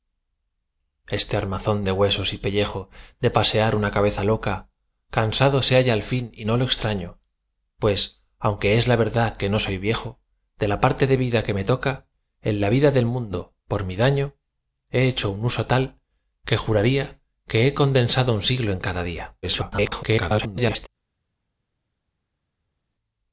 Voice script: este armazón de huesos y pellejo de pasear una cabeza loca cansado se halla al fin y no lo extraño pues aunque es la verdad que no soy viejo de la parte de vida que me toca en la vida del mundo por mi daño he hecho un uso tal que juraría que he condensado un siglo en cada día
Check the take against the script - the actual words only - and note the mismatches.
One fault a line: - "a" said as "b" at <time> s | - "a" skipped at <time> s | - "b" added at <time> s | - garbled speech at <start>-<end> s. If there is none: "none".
- garbled speech at 19.4-20.9 s